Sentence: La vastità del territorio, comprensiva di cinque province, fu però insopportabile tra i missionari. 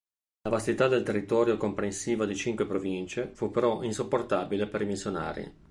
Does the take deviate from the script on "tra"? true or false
true